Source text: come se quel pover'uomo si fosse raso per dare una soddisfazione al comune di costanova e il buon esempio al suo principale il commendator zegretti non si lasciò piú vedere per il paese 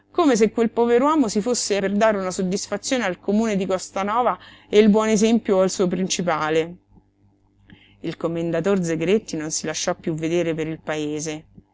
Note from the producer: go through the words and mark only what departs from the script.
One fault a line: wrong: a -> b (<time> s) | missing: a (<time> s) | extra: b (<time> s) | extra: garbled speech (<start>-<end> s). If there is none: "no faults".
missing: raso (1.8 s)